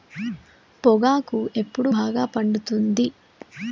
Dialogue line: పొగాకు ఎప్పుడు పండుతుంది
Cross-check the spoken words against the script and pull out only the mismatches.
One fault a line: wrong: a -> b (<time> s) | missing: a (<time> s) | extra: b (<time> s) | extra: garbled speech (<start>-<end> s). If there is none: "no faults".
extra: బాగా (1.9 s)